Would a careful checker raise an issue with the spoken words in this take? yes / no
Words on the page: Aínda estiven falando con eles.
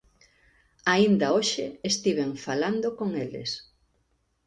yes